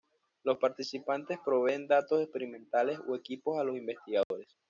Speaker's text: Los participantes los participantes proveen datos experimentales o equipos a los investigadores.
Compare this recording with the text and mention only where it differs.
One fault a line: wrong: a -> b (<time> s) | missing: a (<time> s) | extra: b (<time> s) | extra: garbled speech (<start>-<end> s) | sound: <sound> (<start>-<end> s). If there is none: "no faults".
missing: los participantes (1.4 s)
sound: dropout (4.2-4.3 s)